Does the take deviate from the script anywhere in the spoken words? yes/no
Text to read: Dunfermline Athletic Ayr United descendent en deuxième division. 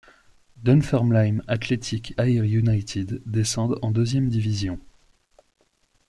no